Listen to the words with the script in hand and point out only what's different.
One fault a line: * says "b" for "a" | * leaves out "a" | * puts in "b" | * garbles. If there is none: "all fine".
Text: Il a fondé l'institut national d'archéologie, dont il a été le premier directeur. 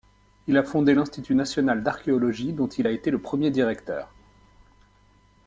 all fine